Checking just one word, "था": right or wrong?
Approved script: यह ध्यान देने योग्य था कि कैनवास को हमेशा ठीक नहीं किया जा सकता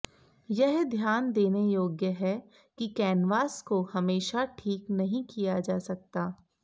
wrong